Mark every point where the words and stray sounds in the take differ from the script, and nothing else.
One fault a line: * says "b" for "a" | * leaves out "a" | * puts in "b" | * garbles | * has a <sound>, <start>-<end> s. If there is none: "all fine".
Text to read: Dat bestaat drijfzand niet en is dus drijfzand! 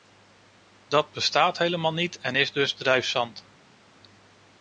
* says "helemaal" for "drijfzand"